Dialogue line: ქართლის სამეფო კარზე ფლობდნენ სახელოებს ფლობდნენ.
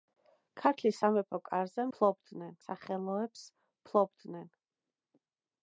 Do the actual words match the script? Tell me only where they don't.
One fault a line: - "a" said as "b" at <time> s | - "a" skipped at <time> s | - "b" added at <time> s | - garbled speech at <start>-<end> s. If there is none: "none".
none